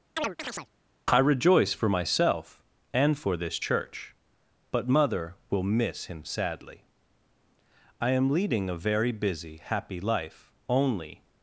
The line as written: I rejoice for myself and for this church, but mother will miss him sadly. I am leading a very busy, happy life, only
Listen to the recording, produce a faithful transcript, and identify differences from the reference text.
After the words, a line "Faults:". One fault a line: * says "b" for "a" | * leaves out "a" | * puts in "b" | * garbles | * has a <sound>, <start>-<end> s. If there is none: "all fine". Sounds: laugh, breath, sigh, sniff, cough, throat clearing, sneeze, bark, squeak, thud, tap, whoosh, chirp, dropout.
I rejoice for myself and for this church, but mother will miss him sadly. I am leading a very busy, happy life, only
Faults:
* has a chirp, 0.2-0.7 s